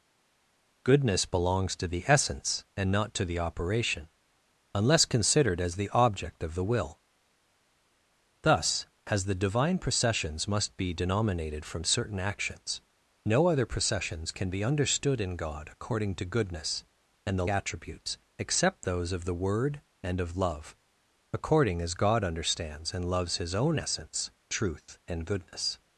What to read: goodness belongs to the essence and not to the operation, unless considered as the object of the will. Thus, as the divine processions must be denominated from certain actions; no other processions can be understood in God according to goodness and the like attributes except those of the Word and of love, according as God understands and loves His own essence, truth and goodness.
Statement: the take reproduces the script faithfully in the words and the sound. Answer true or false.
false